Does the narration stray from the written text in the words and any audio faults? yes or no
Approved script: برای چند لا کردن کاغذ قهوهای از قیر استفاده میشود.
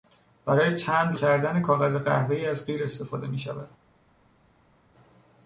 yes